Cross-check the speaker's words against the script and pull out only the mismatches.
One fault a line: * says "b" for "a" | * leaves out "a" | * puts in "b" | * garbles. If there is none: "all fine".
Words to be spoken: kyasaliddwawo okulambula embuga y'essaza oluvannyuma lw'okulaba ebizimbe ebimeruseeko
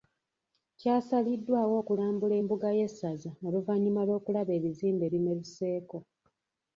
all fine